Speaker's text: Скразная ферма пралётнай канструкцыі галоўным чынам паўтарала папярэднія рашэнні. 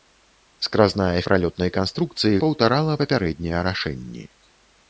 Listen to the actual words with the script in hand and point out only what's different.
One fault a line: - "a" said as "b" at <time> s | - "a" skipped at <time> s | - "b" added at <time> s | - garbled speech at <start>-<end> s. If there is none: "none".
- "ферма" skipped at 1.2 s
- "галоўным чынам" skipped at 2.4 s